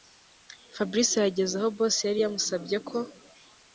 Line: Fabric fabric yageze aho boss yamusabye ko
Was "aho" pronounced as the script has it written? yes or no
yes